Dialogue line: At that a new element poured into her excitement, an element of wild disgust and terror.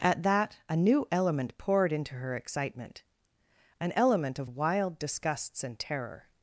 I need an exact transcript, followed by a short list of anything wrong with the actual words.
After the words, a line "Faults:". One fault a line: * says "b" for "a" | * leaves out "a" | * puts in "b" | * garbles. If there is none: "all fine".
At that a new element poured into her excitement, an element of wild disgusts and terror.
Faults:
* says "disgusts" for "disgust"